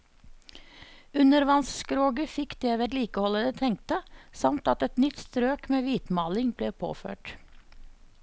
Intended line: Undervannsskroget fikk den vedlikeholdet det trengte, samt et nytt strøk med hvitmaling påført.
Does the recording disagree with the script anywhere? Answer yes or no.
yes